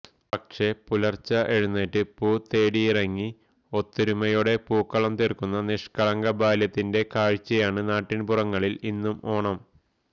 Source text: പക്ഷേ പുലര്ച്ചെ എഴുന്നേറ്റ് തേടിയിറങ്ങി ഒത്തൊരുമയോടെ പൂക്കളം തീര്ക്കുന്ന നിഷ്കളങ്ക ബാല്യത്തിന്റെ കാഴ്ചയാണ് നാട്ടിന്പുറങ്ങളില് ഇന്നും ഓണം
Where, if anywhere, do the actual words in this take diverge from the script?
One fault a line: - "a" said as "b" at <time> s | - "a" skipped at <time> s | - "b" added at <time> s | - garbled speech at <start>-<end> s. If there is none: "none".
- "പൂ" added at 2.1 s